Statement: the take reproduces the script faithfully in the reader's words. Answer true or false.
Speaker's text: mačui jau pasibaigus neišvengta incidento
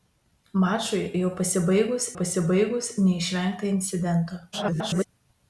false